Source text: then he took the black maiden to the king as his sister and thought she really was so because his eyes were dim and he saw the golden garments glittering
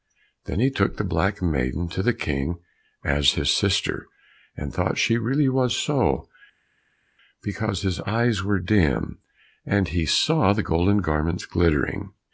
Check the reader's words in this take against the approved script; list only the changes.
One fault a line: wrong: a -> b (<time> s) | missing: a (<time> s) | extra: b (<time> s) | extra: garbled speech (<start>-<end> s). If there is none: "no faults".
no faults